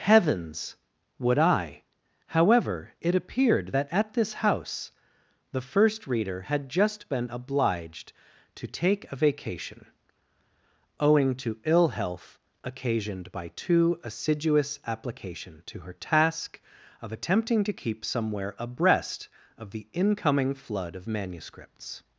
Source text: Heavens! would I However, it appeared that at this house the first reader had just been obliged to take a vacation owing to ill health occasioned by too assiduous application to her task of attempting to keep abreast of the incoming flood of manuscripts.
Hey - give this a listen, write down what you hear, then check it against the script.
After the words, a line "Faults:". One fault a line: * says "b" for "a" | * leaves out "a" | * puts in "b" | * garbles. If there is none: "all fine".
Heavens! would I However, it appeared that at this house the first reader had just been obliged to take a vacation owing to ill health occasioned by too assiduous application to her task of attempting to keep somewhere abreast of the incoming flood of manuscripts.
Faults:
* puts in "somewhere"